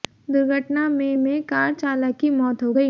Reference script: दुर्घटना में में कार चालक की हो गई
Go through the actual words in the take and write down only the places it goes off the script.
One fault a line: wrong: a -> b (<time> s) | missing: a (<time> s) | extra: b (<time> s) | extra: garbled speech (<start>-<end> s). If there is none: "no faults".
extra: मौत (2.3 s)